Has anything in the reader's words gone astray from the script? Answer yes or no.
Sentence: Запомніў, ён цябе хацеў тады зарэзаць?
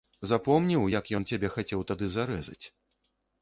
yes